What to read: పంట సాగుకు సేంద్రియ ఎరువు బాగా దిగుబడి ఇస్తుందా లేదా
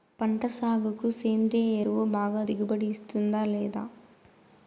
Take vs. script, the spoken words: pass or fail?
pass